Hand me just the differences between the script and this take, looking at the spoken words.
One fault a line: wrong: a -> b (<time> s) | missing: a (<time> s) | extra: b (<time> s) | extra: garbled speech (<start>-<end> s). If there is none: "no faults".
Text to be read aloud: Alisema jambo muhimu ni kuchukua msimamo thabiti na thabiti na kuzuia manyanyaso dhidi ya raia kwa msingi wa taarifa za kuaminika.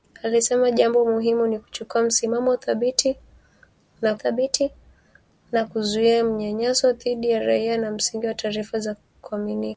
no faults